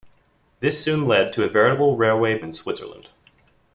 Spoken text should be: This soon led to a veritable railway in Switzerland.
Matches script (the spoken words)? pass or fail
pass